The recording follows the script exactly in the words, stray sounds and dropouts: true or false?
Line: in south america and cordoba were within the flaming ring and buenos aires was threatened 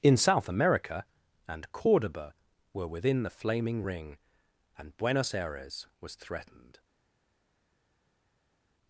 true